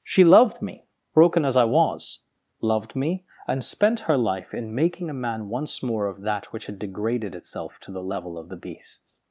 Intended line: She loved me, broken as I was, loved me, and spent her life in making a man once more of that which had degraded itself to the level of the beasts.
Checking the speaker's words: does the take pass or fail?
pass